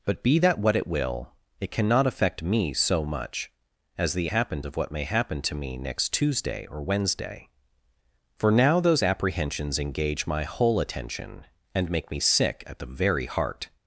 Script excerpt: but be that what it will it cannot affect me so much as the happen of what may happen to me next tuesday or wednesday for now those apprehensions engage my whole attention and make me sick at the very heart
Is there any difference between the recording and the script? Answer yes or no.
no